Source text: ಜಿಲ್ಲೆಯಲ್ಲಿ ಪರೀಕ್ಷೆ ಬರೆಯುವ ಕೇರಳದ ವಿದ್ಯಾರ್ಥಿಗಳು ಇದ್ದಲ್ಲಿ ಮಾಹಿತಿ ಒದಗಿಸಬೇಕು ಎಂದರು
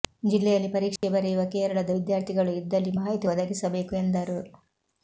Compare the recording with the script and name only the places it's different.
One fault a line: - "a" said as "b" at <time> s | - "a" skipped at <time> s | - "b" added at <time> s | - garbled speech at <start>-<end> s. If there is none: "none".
none